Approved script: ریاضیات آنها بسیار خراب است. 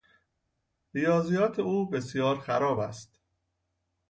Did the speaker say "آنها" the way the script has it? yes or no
no